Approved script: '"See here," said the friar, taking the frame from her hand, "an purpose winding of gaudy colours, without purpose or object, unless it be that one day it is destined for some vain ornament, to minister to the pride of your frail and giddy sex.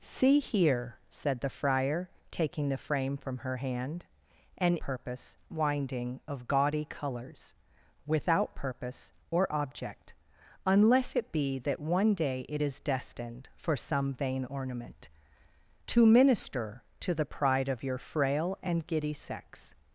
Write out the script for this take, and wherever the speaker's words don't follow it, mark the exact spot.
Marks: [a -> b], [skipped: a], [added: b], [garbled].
'"See here," said the friar, taking the frame from her hand, "an purpose winding of gaudy colours, without purpose or object, unless it be that one day it is destined for some vain ornament, to minister to the pride of your frail and giddy sex.